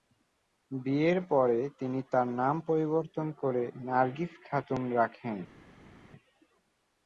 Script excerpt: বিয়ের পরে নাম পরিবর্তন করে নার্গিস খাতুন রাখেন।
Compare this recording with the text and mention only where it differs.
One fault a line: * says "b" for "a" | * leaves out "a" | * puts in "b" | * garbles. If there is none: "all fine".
* puts in "তিনি তার"